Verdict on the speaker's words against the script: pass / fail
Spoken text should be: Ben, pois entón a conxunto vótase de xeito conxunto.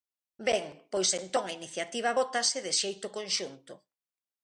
fail